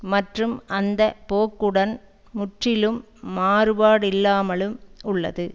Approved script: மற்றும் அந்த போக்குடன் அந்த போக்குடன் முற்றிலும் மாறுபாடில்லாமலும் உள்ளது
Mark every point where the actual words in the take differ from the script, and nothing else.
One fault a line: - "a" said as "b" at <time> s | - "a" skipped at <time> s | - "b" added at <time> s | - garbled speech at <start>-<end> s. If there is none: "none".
- "அந்த போக்குடன்" skipped at 1.9 s